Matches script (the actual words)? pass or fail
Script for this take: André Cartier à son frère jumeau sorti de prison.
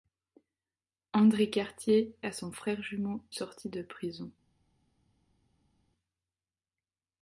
pass